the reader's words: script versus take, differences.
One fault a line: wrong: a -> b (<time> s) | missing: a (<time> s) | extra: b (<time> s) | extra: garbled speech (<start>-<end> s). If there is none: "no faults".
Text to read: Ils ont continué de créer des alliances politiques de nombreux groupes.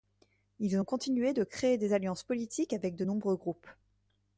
extra: avec (2.7 s)